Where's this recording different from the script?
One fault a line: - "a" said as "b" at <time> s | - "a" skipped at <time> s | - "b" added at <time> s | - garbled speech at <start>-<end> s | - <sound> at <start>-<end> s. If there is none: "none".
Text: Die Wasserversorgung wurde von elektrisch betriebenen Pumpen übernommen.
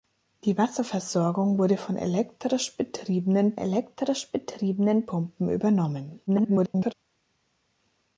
- "elektrisch betriebenen" added at 3.6 s
- garbled speech at 6.3-6.9 s